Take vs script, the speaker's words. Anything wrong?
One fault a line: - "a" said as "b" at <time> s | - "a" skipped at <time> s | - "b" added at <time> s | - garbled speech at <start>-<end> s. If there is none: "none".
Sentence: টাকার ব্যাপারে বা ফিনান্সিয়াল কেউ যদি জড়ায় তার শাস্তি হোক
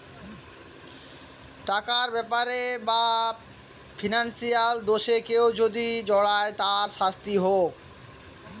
- "দোষে" added at 4.8 s